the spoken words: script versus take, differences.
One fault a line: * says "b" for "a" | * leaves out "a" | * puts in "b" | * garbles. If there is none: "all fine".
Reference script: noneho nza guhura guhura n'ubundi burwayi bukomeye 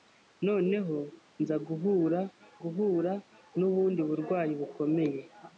all fine